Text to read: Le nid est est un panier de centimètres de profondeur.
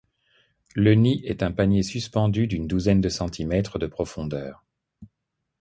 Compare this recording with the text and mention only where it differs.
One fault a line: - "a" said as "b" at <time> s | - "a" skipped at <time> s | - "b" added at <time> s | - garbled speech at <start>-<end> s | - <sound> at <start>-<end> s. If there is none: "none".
- "est" skipped at 1.4 s
- "suspendu d'une douzaine" added at 1.8 s